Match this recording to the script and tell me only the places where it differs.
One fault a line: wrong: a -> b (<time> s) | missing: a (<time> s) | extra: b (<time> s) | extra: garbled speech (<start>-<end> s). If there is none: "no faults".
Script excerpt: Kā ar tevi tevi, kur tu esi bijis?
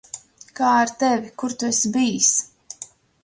missing: tevi (1.3 s)